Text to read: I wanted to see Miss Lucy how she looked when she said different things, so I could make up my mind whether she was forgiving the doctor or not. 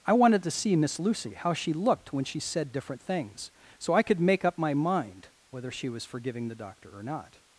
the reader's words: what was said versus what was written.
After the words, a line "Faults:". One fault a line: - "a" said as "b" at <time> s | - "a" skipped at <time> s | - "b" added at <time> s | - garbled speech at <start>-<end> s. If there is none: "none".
I wanted to see Miss Lucy how she looked when she said different things, so I could make up my mind whether she was forgiving the doctor or not.
Faults:
none